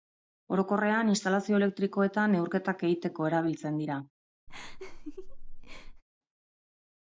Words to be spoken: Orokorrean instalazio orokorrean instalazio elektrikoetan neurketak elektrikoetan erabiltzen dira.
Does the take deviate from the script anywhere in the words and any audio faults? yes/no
yes